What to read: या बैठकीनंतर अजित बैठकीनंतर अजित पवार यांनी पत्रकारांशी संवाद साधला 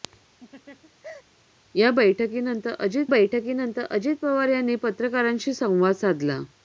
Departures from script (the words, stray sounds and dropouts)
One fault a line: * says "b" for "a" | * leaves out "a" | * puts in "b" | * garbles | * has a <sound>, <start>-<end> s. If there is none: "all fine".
* has a laugh, 0.4-1.2 s